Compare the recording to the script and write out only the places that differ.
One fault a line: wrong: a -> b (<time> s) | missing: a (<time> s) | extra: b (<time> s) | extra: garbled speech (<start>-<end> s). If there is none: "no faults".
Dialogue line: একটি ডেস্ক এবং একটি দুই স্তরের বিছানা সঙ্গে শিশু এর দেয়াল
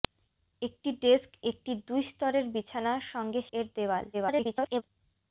missing: এবং (1.3 s)
missing: শিশু (3.4 s)
extra: garbled speech (4.1-4.8 s)